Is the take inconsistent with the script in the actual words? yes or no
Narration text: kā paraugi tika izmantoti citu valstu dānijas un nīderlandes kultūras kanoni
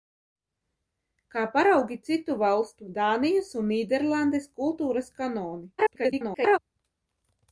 yes